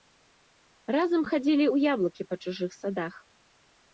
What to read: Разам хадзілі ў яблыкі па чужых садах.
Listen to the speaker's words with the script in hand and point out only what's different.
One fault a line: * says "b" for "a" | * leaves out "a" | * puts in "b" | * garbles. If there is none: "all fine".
all fine